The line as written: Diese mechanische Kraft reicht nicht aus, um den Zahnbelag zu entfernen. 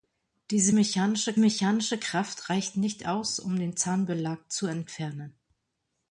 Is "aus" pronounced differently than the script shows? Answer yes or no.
no